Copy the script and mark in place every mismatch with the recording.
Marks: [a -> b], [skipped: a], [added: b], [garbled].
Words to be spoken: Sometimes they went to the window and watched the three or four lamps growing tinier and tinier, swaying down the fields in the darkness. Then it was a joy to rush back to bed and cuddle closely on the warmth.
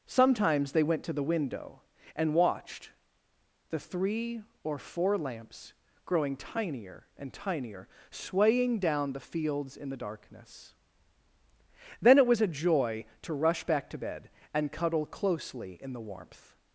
Sometimes they went to the window and watched the three or four lamps growing tinier and tinier, swaying down the fields in the darkness. Then it was a joy to rush back to bed and cuddle closely [on -> in] the warmth.